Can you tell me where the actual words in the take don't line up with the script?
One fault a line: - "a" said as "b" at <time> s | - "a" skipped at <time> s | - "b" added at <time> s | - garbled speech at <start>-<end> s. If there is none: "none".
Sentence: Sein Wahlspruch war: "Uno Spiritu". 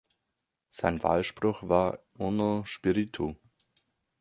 none